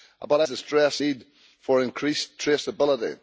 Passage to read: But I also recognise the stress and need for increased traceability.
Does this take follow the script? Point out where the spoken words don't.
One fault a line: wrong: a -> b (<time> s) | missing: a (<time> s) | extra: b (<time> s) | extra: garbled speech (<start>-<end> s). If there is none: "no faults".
missing: also recognise (0.5 s)
missing: and (1.0 s)